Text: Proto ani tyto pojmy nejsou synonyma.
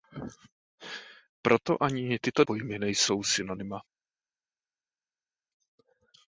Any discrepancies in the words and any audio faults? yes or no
no